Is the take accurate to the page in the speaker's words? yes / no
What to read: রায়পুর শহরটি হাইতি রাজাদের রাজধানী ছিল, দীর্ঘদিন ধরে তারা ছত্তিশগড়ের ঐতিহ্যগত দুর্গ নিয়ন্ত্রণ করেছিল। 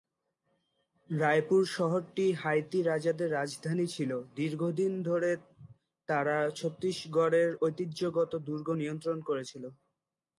yes